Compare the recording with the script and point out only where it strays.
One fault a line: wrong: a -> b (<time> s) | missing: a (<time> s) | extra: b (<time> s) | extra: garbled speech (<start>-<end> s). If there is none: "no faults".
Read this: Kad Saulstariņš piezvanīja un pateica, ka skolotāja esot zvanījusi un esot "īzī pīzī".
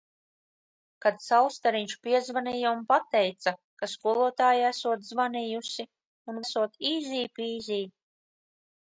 no faults